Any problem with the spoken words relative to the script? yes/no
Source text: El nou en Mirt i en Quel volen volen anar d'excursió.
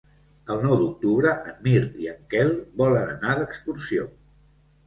yes